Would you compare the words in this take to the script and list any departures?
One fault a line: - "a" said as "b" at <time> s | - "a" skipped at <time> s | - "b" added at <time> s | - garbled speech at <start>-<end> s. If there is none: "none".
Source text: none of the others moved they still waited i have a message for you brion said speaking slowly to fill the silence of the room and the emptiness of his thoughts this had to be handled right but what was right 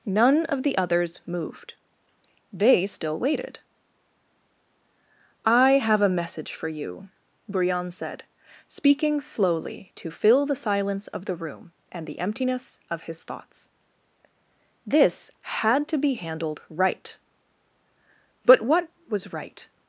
none